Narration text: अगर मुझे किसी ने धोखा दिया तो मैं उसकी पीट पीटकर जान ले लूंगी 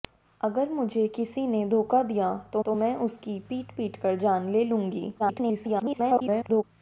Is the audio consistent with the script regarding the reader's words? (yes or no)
no